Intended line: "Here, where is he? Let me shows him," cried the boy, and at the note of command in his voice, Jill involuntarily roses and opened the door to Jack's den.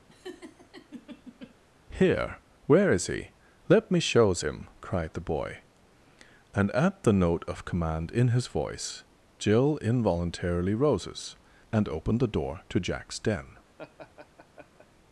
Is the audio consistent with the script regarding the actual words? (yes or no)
yes